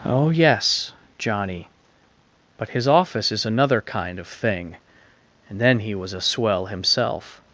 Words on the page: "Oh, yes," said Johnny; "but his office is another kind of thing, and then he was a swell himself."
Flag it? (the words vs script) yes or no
yes